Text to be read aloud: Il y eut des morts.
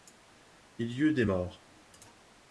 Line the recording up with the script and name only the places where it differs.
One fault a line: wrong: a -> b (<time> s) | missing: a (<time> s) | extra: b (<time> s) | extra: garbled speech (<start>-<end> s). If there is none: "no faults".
no faults